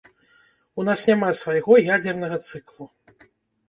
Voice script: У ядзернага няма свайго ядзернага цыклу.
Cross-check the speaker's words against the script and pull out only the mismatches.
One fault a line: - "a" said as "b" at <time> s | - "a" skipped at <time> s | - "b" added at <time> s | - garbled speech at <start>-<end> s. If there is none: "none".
- "ядзернага" said as "нас" at 0.9 s